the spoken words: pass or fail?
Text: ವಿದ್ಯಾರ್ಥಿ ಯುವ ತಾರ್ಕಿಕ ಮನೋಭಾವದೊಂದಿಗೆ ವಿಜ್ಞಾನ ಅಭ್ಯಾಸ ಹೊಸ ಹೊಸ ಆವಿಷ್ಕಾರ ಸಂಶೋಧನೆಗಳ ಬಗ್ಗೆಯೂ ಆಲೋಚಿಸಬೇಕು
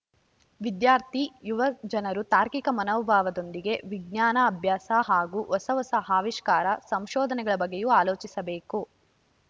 fail